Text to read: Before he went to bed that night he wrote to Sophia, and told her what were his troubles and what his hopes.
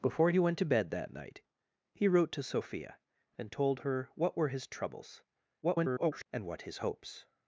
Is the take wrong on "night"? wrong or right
right